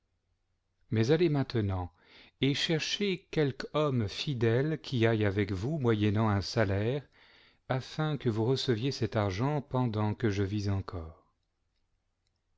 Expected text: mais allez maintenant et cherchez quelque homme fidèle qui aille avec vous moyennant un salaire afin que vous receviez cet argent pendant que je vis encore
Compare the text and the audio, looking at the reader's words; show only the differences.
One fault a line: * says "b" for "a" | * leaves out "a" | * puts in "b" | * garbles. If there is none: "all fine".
all fine